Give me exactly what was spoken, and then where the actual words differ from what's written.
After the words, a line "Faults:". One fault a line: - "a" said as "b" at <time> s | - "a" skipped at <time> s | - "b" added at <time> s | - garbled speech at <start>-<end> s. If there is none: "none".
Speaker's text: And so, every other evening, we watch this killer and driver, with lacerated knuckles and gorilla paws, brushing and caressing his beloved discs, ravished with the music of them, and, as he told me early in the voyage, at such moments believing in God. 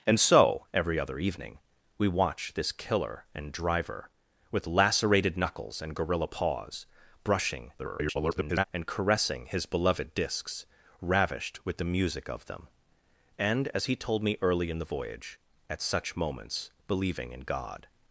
And so, every other evening, we watch this killer and driver, with lacerated knuckles and gorilla paws, brushing [garbled] and caressing his beloved discs, ravished with the music of them, and, as he told me early in the voyage, at such moments believing in God.
Faults:
- garbled speech at 7.8-8.6 s